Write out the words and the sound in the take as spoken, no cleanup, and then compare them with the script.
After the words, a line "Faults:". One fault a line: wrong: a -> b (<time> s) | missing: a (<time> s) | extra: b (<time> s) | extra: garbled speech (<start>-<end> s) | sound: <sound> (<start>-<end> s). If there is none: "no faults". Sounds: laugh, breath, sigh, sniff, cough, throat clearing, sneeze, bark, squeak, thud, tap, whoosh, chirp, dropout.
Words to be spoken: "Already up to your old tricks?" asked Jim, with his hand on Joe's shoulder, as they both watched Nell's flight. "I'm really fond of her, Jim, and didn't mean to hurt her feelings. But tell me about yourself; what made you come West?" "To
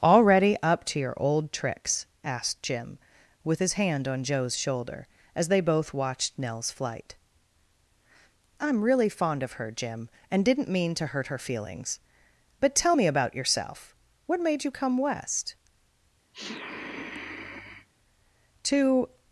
"Already up to your old tricks?" asked Jim, with his hand on Joe's shoulder, as they both watched Nell's flight. "I'm really fond of her, Jim, and didn't mean to hurt her feelings. But tell me about yourself; what made you come West?" "To
Faults:
sound: sniff (16.3-17.9 s)